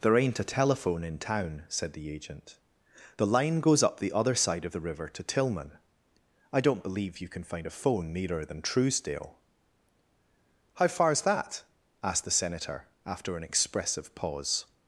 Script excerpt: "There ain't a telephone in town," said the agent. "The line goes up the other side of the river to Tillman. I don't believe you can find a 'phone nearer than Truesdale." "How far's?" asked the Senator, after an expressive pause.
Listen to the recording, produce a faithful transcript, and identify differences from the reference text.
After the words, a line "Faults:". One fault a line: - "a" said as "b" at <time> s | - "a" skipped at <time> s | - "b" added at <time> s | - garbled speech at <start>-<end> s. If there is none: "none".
"There ain't a telephone in town," said the agent. "The line goes up the other side of the river to Tillman. I don't believe you can find a 'phone nearer than Truesdale." "How far's that?" asked the Senator, after an expressive pause.
Faults:
- "that" added at 11.2 s